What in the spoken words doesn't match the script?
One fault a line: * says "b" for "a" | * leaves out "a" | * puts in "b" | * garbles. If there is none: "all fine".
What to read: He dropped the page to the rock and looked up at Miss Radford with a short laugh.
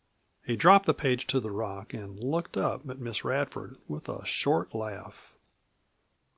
all fine